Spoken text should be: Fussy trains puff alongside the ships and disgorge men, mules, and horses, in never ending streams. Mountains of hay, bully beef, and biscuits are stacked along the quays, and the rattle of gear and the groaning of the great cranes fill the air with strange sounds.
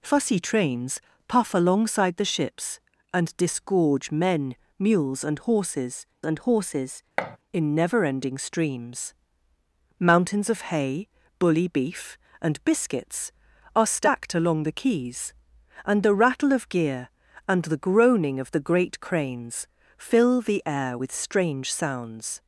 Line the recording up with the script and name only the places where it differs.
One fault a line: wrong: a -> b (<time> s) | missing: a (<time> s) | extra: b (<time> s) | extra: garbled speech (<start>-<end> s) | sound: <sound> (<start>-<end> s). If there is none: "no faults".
extra: and horses (6.2 s)
sound: thud (7.2-7.4 s)